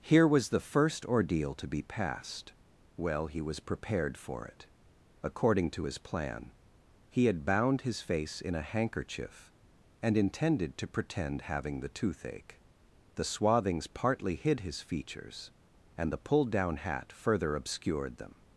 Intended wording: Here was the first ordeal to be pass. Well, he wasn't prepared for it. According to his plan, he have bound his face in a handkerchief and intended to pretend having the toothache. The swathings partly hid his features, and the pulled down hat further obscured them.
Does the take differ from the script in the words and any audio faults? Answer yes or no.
yes